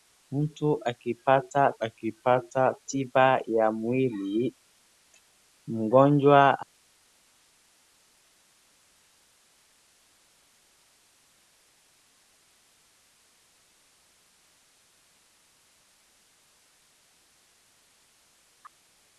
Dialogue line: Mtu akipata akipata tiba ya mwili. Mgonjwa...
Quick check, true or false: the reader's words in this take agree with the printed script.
true